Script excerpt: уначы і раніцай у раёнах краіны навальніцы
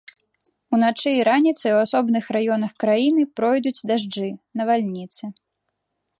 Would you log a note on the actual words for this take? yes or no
yes